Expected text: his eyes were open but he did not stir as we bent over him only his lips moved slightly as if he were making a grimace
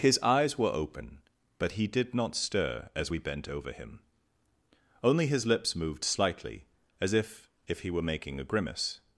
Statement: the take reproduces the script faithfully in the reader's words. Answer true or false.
false